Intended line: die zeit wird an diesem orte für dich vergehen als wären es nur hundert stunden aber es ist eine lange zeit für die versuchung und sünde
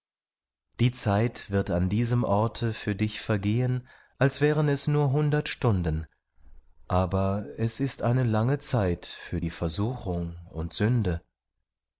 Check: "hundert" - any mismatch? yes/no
no